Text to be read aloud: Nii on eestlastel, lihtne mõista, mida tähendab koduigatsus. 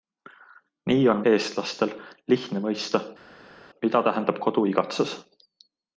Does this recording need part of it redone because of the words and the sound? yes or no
no